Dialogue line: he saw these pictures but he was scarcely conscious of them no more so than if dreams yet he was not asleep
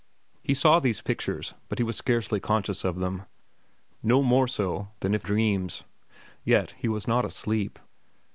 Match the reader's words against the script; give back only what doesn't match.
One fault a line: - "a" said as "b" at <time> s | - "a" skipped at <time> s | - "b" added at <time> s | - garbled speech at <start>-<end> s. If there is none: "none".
none